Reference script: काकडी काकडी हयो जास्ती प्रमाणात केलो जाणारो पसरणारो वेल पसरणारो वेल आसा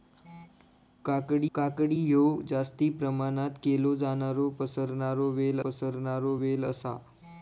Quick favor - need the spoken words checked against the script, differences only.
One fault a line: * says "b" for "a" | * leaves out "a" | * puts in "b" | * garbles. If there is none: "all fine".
all fine